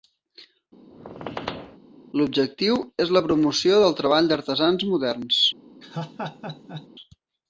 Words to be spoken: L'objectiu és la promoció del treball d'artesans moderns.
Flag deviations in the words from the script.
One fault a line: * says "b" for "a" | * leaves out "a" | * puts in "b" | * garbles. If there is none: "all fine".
all fine